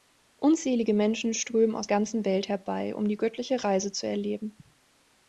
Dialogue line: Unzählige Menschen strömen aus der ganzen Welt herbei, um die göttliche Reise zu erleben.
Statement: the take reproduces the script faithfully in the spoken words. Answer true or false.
false